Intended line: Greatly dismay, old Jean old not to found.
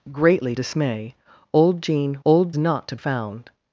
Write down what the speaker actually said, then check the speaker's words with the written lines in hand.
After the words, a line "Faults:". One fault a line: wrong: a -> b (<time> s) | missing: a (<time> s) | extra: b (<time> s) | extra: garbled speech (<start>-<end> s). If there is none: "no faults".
Greatly dismay, old Jean old not to found.
Faults:
no faults